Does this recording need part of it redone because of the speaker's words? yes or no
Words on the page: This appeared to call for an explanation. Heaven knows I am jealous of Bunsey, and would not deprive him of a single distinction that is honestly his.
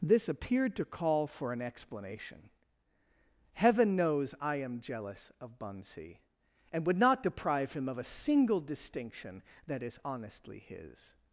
no